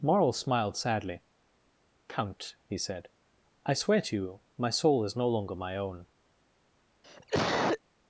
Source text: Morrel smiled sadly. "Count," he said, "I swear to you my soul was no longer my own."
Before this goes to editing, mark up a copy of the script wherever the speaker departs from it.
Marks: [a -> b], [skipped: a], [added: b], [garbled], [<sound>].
Morrel smiled sadly. "Count," he said, "I swear to you my soul [was -> is] no longer my own." [cough]